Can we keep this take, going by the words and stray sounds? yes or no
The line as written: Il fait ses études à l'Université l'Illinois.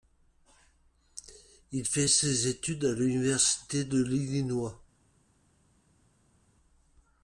no